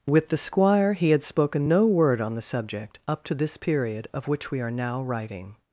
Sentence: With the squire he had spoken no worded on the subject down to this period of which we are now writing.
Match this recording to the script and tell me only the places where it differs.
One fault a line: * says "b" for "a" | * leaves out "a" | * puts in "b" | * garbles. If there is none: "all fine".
* says "word" for "worded"
* says "up" for "down"